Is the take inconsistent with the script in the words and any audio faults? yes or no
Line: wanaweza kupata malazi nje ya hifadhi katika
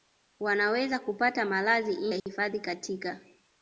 yes